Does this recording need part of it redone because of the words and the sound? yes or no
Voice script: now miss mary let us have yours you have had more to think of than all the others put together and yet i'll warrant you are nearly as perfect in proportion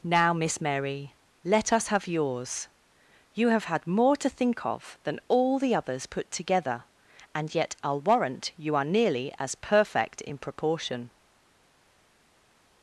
no